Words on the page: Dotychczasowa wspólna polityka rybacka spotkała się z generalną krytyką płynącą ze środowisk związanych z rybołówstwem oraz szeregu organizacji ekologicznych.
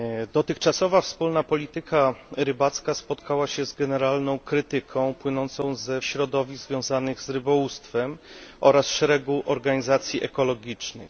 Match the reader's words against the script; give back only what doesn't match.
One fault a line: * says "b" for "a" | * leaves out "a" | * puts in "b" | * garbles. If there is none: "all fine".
all fine